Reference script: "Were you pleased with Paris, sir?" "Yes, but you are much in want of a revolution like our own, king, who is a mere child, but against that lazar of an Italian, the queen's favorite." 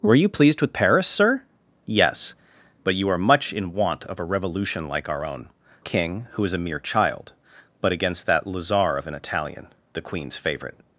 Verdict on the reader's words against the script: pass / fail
pass